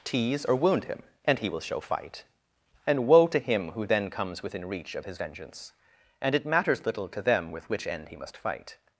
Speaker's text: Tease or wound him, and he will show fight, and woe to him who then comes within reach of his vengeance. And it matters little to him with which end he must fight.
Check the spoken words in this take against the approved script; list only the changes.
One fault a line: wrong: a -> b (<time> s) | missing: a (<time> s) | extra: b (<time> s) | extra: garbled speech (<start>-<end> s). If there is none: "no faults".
wrong: him -> them (7.2 s)